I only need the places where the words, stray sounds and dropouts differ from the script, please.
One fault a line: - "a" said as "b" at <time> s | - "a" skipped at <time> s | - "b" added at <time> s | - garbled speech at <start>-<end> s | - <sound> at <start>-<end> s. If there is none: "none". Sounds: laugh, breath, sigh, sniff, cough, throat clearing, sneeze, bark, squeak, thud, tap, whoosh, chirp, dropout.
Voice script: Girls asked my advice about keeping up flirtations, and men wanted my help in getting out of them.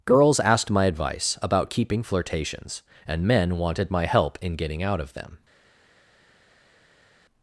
- "up" skipped at 2.0 s